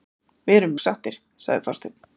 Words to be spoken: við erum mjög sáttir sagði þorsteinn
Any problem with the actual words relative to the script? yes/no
yes